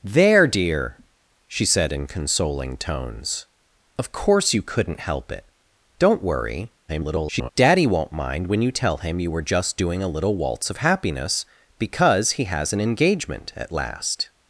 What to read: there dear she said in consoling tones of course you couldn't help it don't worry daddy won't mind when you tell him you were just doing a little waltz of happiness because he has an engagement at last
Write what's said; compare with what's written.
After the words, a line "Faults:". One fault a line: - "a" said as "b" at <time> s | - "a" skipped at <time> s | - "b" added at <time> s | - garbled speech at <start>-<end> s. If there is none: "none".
there dear she said in consoling tones of course you couldn't help it don't worry [garbled] daddy won't mind when you tell him you were just doing a little waltz of happiness because he has an engagement at last
Faults:
- garbled speech at 6.9-7.5 s